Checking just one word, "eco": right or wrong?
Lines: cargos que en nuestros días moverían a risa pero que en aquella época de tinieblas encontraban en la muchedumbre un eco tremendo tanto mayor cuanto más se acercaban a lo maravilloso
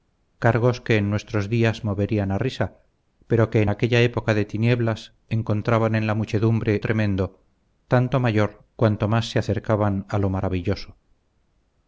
wrong